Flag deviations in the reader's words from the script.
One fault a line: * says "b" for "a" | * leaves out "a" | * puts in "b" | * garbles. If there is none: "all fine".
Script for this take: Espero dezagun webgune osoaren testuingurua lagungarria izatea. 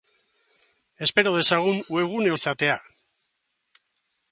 * leaves out "osoaren testuingurua lagungarria"